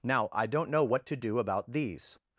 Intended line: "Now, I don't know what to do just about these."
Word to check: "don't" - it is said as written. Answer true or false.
true